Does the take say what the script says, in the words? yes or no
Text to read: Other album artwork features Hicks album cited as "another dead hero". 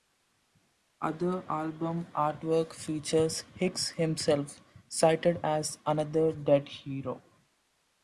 no